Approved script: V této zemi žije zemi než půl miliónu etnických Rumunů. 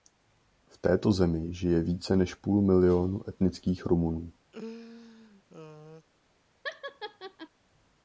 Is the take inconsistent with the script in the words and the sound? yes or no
yes